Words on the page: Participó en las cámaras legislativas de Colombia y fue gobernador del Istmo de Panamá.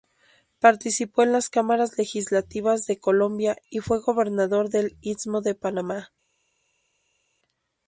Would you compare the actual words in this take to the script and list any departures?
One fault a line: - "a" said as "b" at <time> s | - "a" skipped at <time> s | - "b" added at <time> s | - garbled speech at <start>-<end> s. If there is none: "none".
none